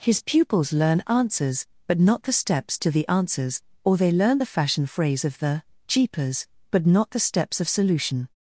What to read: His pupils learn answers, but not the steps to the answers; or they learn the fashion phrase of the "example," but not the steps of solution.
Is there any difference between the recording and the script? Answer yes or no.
yes